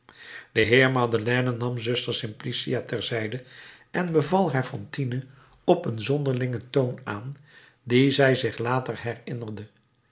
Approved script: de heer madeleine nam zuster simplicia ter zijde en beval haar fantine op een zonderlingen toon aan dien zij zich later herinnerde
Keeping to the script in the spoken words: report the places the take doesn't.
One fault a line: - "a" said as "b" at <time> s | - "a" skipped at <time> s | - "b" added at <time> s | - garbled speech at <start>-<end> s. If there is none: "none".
none